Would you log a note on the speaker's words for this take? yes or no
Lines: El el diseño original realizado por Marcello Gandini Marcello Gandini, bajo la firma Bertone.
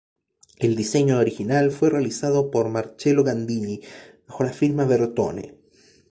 yes